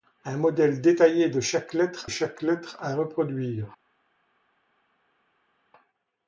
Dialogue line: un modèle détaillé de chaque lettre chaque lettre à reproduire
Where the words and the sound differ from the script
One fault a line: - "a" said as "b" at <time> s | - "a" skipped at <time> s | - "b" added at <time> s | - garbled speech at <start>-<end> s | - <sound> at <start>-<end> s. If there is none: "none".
none